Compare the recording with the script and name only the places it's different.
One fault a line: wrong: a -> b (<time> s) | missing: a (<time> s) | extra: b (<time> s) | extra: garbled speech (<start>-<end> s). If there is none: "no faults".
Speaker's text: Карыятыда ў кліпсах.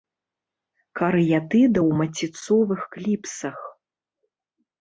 extra: маціцовых (2.0 s)